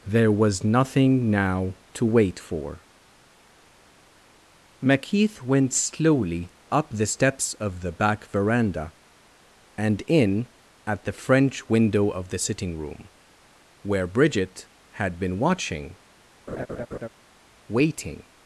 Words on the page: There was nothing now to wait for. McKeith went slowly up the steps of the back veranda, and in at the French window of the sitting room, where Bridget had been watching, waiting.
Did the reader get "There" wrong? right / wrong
right